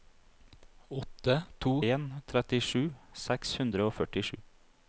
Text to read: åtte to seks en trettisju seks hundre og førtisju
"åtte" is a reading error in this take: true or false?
false